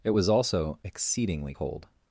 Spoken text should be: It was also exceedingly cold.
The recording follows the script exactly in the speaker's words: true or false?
true